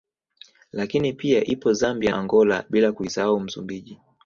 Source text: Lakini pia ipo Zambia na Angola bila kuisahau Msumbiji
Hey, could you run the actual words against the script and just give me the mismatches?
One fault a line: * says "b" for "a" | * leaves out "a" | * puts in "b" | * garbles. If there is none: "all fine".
* leaves out "na"